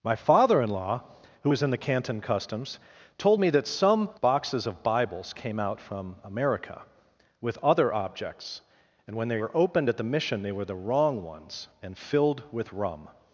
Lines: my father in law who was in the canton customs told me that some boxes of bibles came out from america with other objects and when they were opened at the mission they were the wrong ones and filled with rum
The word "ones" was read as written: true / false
true